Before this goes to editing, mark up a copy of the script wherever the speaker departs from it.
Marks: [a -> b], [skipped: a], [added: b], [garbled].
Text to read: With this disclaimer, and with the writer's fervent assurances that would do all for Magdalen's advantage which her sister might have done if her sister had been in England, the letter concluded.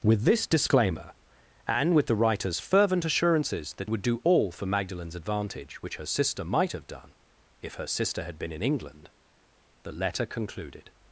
With this disclaimer, and with the writer's fervent assurances that would do all for Magdalen's advantage which her sister might have done if her sister had been in England, the letter concluded.